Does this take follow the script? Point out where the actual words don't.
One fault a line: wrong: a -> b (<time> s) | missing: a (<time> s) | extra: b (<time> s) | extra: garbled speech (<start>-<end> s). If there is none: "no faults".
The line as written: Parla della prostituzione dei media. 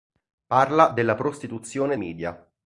missing: dei (1.9 s)